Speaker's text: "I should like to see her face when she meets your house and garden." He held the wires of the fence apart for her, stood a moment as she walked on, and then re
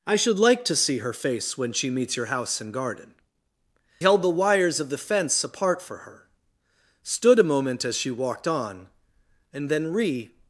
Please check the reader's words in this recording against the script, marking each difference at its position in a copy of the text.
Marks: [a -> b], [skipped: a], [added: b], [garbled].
"I should like to see her face when she meets your house and garden." [skipped: He] held the wires of the fence apart for her, stood a moment as she walked on, and then re